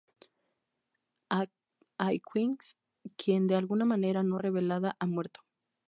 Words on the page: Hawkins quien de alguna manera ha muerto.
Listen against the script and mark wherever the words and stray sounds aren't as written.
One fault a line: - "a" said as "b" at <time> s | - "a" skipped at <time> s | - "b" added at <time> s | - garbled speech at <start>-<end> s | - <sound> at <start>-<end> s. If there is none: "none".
- "no revelada" added at 4.2 s